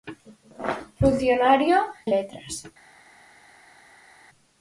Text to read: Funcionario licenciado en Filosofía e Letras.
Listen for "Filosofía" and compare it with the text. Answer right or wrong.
wrong